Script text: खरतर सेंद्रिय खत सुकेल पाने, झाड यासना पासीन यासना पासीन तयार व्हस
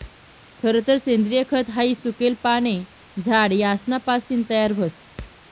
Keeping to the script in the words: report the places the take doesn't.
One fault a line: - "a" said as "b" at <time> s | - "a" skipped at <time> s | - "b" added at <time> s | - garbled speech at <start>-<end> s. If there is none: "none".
- "हाई" added at 1.7 s
- "यासना पासीन" skipped at 4.4 s